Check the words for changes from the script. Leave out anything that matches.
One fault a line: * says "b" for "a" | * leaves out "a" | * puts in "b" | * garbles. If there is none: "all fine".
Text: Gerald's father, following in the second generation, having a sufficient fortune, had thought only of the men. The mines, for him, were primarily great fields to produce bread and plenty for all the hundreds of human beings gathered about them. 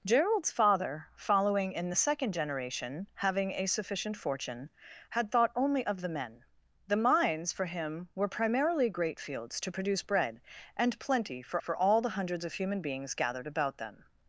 * puts in "for"